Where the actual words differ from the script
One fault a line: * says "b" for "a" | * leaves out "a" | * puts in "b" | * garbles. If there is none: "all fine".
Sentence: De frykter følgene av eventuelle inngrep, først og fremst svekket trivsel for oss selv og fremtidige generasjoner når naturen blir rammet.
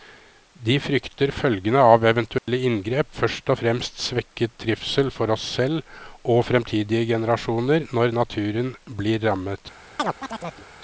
all fine